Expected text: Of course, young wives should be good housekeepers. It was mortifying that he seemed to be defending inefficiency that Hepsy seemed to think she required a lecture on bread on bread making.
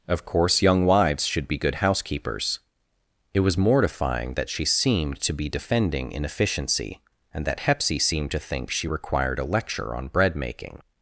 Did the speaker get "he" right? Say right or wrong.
wrong